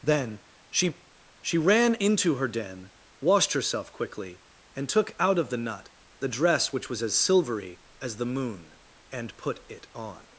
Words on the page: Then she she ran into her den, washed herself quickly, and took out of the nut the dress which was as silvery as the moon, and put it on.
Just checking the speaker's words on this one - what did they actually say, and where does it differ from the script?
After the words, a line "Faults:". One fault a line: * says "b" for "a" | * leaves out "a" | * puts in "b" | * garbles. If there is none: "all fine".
Then she she ran into her den, washed herself quickly, and took out of the nut the dress which was as silvery as the moon, and put it on.
Faults:
all fine